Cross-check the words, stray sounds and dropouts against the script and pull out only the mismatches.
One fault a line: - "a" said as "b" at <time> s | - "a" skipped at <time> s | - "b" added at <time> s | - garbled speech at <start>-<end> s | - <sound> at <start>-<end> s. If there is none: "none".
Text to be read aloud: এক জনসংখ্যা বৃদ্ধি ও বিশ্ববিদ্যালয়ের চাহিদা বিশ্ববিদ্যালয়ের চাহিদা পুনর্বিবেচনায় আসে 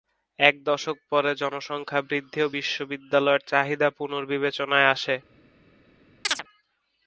- "দশক পরে" added at 0.6 s
- "বিশ্ববিদ্যালয়ের চাহিদা" skipped at 3.9 s
- chirp at 6.2-6.4 s